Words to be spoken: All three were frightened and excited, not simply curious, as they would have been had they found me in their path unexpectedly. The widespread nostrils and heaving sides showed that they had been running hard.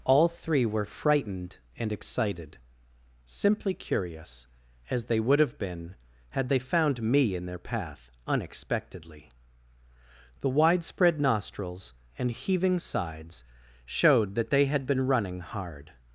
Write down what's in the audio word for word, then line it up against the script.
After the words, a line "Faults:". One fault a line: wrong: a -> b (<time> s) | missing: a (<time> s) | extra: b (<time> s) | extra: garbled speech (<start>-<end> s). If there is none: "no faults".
All three were frightened and excited, simply curious, as they would have been had they found me in their path unexpectedly. The widespread nostrils and heaving sides showed that they had been running hard.
Faults:
missing: not (2.6 s)